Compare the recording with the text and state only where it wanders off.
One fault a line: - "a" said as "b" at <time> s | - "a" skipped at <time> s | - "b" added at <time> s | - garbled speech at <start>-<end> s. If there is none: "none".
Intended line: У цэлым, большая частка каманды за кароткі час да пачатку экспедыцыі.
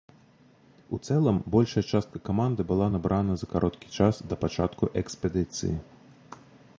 - "была набрана" added at 2.7 s